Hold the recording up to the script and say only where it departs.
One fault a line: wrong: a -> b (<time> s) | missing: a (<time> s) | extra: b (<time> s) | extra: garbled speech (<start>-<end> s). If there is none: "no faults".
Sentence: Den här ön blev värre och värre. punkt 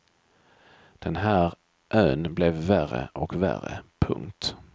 no faults